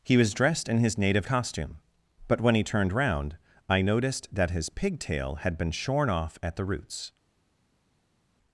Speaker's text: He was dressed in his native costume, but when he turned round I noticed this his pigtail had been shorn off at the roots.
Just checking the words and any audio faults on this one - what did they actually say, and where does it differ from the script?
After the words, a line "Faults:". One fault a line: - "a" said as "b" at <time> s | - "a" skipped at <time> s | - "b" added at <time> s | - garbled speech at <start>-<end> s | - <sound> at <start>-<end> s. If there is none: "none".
He was dressed in his native costume, but when he turned round I noticed that his pigtail had been shorn off at the roots.
Faults:
- "this" said as "that" at 4.3 s